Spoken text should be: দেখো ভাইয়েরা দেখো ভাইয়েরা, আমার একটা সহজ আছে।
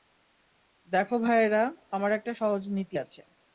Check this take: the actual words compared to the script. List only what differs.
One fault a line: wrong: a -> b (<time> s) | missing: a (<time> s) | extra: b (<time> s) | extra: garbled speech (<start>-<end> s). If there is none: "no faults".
missing: দেখো ভাইয়েরা (1.6 s)
extra: নীতি (2.7 s)